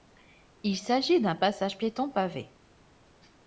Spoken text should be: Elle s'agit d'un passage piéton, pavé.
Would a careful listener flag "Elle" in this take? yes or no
yes